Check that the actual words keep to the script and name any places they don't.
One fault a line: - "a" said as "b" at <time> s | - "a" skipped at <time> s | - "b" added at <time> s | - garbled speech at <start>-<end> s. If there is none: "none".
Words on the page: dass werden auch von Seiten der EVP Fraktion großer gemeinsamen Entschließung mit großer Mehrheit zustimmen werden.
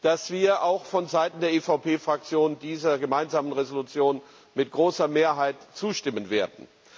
- "werden" said as "wir" at 0.3 s
- "großer" said as "dieser" at 2.6 s